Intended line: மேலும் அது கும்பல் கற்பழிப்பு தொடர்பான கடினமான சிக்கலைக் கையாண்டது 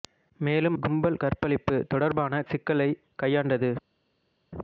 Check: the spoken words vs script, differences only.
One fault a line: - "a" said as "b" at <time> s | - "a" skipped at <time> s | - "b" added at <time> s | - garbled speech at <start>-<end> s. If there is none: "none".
- "அது" skipped at 0.8 s
- "கடினமான" skipped at 2.4 s